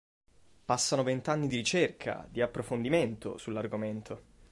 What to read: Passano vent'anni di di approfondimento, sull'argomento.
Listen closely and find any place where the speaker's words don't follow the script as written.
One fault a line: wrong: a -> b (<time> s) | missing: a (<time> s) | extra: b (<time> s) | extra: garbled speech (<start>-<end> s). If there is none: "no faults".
extra: ricerca (1.6 s)